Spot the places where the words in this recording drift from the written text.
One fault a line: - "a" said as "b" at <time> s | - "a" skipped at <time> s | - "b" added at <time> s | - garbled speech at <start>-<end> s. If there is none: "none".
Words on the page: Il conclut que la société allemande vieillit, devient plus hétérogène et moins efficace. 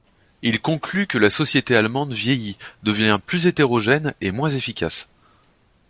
none